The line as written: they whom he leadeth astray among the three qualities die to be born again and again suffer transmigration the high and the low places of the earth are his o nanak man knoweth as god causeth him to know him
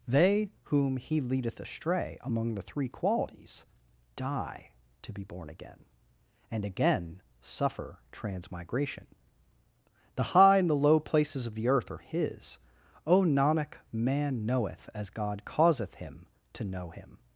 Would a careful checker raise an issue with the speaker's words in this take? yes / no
no